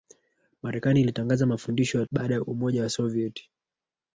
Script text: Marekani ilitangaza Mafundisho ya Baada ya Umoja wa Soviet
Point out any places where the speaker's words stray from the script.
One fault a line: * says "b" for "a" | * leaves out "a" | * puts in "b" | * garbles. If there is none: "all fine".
all fine